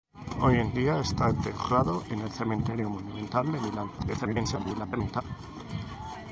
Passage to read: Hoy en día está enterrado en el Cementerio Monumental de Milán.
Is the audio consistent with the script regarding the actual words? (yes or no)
no